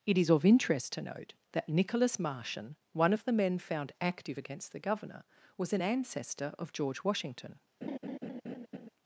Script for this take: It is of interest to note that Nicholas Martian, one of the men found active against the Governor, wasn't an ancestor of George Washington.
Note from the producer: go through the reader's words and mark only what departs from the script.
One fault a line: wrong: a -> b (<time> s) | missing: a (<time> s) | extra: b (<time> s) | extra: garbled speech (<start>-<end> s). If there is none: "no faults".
wrong: wasn't -> was (5.6 s)